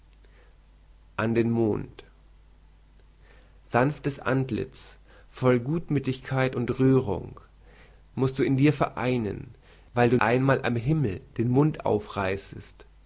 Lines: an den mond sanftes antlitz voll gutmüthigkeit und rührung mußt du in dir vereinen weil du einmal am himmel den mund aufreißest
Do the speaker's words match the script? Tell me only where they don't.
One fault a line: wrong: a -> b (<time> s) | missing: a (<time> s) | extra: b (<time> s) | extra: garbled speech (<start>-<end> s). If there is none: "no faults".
no faults